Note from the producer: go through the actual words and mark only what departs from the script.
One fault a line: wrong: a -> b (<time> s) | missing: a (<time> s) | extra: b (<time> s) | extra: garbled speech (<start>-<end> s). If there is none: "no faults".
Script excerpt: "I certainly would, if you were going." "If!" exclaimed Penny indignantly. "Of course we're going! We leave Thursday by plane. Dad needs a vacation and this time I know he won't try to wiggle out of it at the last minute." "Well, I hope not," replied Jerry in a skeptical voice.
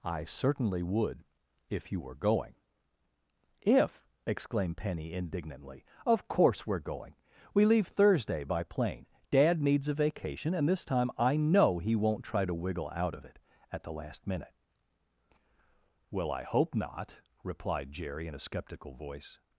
no faults